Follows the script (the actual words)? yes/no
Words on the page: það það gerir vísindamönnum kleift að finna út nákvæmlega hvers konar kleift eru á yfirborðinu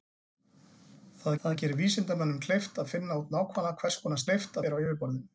yes